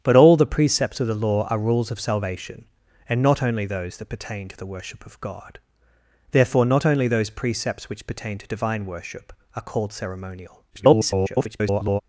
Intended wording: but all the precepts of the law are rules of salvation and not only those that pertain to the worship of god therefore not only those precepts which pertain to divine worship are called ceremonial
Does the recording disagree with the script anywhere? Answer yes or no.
yes